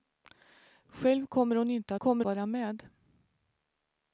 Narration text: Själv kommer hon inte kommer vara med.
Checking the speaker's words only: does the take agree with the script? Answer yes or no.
yes